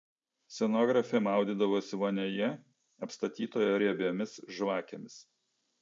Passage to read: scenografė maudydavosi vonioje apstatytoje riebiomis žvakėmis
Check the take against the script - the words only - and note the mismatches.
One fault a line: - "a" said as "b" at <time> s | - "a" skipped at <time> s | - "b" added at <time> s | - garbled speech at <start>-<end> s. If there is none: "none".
none